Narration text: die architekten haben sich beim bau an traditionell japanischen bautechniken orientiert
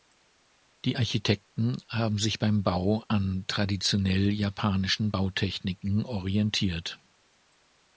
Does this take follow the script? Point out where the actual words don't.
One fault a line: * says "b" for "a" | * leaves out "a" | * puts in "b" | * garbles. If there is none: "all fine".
all fine